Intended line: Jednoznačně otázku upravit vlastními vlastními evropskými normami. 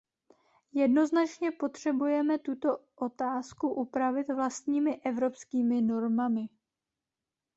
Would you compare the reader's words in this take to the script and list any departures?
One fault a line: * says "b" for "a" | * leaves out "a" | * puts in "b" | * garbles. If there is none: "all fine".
* puts in "potřebujeme tuto"
* leaves out "vlastními"